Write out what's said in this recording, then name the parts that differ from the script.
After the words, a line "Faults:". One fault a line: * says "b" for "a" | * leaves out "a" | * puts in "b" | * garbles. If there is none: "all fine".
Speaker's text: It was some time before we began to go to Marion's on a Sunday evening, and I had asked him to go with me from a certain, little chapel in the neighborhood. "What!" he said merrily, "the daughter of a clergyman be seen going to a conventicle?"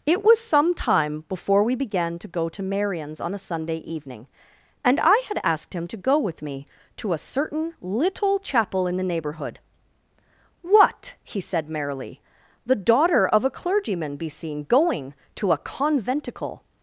It was some time before we began to go to Marion's on a Sunday evening, and I had asked him to go with me to a certain, little chapel in the neighborhood. "What!" he said merrily, "the daughter of a clergyman be seen going to a conventicle?"
Faults:
* says "to" for "from"